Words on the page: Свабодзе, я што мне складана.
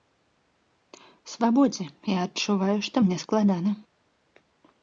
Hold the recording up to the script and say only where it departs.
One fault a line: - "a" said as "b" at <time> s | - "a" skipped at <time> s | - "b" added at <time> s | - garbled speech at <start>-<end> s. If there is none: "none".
- "адчуваю" added at 2.3 s